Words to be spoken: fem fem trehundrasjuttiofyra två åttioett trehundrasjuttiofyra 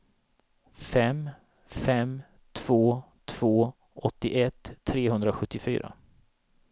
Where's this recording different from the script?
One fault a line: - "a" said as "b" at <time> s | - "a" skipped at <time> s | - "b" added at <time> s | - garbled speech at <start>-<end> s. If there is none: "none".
- "trehundrasjuttiofyra" said as "två" at 2.5 s